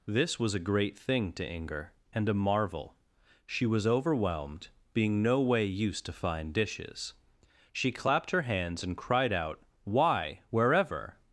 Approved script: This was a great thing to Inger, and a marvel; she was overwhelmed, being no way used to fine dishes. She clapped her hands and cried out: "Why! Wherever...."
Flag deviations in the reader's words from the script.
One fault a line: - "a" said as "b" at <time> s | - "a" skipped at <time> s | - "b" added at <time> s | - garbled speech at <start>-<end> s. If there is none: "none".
none